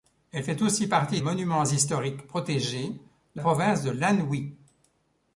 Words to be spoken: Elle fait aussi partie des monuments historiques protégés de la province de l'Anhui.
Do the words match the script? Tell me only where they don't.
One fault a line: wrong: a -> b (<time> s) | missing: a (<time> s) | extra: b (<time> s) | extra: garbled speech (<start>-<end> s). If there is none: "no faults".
missing: des (1.2 s)
missing: la (3.4 s)